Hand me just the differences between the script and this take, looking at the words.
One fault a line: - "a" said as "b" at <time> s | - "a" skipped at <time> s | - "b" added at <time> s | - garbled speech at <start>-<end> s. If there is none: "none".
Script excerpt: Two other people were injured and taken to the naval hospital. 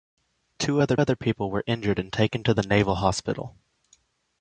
- "other" added at 1.0 s